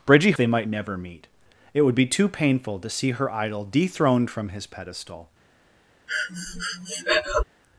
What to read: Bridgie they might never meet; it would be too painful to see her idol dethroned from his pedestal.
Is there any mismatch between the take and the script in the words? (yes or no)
no